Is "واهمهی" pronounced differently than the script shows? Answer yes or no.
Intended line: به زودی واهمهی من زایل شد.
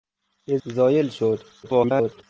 yes